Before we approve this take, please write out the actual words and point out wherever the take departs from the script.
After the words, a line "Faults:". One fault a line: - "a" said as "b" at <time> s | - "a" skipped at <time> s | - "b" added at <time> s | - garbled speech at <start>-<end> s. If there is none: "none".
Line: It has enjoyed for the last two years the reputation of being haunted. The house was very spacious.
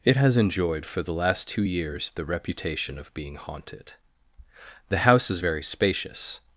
It has enjoyed for the last two years the reputation of being haunted. The house is very spacious.
Faults:
- "was" said as "is" at 5.3 s